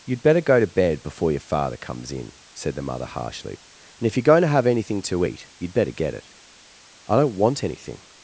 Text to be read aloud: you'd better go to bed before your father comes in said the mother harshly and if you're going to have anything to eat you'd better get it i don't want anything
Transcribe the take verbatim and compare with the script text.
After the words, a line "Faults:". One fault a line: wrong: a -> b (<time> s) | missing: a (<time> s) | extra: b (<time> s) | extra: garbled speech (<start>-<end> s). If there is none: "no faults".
you'd better go to bed before your father comes in said the mother harshly and if you're going to have anything to eat you'd better get it i don't want anything
Faults:
no faults